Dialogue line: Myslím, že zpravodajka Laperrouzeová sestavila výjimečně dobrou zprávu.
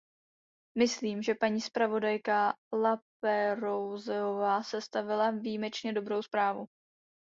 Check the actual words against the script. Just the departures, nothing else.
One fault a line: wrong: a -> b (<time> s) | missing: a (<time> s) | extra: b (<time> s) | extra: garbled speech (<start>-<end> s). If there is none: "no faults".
extra: paní (1.4 s)